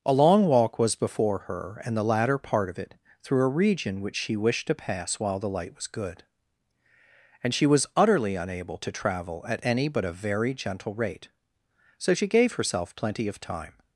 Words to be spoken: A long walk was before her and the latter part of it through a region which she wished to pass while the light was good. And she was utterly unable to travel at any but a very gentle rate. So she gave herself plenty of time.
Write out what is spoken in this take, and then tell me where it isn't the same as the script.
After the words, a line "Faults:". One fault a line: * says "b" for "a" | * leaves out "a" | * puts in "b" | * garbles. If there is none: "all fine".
A long walk was before her and the latter part of it through a region which she wished to pass while the light was good. And she was utterly unable to travel at any but a very gentle rate. So she gave herself plenty of time.
Faults:
all fine